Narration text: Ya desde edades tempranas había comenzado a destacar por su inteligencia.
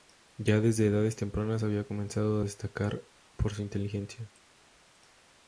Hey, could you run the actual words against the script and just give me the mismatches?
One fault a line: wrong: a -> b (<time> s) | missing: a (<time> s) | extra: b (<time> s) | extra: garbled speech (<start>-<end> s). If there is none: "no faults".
no faults